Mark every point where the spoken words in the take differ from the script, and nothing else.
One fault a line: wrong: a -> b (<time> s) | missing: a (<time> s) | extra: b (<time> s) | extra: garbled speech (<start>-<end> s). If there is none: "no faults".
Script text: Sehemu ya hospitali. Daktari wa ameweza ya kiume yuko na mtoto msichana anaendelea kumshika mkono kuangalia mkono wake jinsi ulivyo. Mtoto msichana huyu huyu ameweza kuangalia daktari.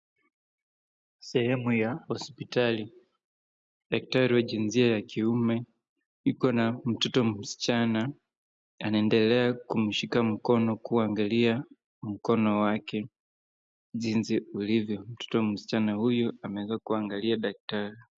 wrong: ameweza -> jinsia (4.4 s)
missing: huyu (16.3 s)